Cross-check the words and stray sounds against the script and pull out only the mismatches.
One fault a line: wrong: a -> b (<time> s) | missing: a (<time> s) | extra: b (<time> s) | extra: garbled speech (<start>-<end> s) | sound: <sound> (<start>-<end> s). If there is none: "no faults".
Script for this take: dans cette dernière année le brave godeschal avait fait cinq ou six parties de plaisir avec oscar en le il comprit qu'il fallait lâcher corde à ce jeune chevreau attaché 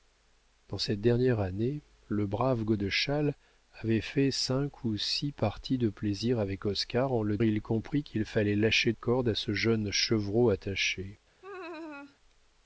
sound: laugh (11.4-12.2 s)